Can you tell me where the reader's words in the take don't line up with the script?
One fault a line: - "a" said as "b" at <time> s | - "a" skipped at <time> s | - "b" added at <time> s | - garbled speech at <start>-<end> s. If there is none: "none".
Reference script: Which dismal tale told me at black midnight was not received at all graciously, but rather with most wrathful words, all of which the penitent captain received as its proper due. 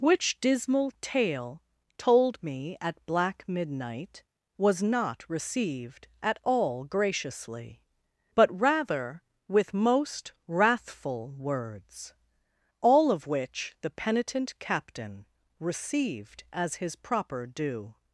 - "its" said as "his" at 16.8 s